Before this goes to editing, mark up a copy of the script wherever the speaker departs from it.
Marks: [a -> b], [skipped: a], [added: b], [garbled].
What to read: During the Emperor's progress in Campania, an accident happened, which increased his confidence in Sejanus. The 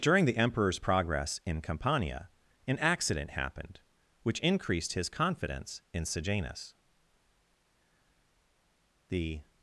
During the Emperor's progress in Campania, an accident happened, which increased his confidence in Sejanus. The